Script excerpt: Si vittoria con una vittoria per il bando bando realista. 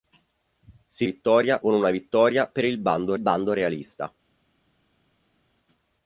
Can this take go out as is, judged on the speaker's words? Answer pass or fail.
pass